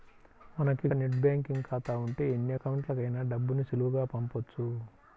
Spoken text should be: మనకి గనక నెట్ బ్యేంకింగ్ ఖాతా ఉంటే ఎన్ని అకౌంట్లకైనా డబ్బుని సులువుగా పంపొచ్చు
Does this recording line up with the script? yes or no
no